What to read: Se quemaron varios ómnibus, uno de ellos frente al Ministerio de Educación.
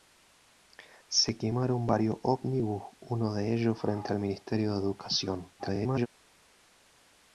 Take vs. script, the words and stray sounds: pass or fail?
fail